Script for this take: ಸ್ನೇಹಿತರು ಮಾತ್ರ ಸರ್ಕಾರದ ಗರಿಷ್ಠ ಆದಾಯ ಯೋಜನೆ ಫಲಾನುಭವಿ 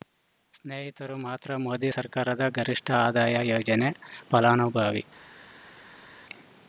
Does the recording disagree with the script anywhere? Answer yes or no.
yes